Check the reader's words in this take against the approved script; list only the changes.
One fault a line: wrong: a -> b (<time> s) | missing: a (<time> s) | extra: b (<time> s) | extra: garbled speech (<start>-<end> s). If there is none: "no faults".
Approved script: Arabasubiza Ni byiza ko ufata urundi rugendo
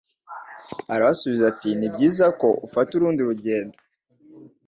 extra: ati (1.5 s)